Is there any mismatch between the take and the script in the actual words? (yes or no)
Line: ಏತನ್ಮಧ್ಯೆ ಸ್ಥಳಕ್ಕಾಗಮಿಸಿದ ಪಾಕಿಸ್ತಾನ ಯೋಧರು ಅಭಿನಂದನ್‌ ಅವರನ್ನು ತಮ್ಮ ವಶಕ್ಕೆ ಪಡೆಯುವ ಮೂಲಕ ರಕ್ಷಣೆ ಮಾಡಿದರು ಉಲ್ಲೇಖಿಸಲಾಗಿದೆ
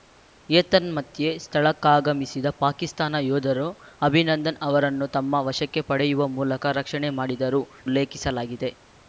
no